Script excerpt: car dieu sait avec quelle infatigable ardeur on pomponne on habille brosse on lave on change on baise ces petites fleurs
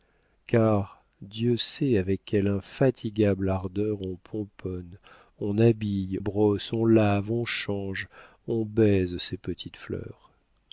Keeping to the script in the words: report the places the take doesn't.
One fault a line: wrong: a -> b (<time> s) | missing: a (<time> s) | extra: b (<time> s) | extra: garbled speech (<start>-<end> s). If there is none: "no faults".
no faults